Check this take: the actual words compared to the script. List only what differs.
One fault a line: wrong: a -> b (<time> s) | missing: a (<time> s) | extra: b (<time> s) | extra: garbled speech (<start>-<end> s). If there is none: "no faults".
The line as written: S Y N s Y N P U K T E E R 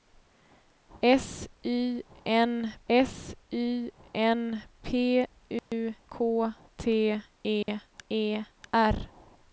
no faults